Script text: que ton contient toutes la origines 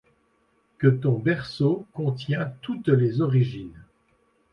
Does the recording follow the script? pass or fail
fail